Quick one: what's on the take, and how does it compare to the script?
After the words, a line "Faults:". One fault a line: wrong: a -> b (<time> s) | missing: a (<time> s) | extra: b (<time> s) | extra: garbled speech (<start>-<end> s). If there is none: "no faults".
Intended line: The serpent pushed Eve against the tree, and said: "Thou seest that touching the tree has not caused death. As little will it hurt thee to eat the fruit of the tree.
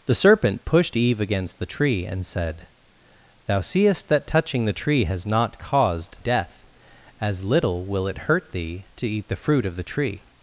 The serpent pushed Eve against the tree, and said: "Thou seest that touching the tree has not caused death. As little will it hurt thee to eat the fruit of the tree.
Faults:
no faults